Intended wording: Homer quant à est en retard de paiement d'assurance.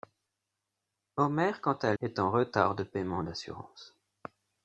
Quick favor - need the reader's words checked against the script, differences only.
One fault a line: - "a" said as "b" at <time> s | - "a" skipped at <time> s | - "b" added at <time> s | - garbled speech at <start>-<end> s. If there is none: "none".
none